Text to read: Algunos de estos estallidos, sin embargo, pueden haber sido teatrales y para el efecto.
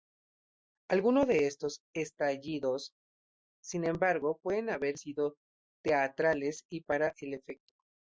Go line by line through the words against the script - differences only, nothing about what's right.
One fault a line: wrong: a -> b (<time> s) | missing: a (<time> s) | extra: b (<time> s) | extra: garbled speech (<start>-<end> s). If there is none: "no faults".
no faults